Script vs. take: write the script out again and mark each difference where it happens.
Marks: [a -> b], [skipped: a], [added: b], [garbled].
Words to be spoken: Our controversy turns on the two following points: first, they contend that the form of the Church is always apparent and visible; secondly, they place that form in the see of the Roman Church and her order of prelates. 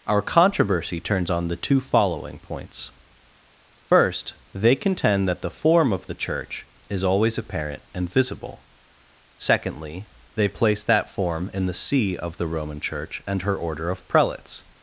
Our controversy turns on the two following points: first, they contend that the form of the Church is always apparent and visible; secondly, they place that form in the see of the Roman Church and her order of prelates.